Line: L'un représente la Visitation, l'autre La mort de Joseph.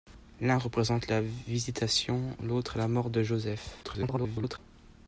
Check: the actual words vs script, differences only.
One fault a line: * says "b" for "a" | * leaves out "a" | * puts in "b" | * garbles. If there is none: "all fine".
* garbles